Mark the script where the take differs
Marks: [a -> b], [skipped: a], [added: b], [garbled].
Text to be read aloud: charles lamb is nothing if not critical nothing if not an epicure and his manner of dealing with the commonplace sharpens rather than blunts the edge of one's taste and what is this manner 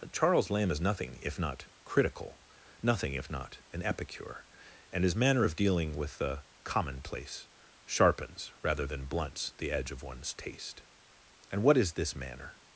charles lamb is nothing if not critical nothing if not an epicure and his manner of dealing with the commonplace sharpens rather than blunts the edge of one's taste and what is this manner